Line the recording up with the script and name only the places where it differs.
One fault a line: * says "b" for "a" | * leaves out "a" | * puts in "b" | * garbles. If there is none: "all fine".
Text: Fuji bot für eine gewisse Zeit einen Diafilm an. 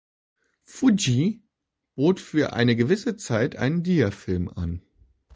all fine